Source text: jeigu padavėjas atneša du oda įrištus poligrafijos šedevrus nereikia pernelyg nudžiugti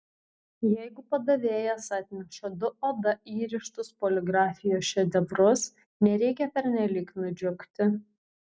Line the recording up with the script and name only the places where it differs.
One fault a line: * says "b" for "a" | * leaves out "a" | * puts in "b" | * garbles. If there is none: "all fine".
all fine